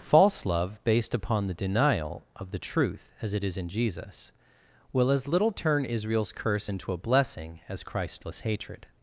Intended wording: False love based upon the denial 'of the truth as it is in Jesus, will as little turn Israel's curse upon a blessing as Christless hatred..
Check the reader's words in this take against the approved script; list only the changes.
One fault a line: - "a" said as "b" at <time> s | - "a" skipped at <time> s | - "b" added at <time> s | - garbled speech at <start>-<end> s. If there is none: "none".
- "upon" said as "into" at 6.7 s